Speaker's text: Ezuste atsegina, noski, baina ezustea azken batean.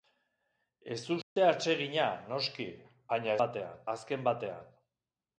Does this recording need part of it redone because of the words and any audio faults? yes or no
yes